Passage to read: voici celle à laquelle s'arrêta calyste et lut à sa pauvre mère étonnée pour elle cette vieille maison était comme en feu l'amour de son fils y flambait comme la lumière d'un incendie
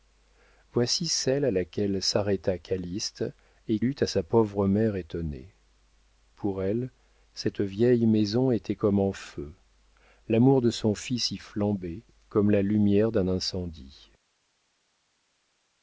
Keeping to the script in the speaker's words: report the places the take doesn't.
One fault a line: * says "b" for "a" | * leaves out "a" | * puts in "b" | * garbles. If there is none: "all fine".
all fine